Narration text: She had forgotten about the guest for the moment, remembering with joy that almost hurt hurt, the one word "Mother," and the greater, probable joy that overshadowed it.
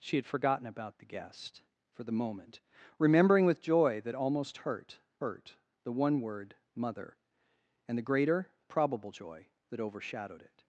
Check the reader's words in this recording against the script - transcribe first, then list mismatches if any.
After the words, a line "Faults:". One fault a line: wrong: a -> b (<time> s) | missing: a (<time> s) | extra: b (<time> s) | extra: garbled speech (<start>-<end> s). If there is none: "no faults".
She had forgotten about the guest for the moment, remembering with joy that almost hurt hurt, the one word "Mother," and the greater, probable joy that overshadowed it.
Faults:
no faults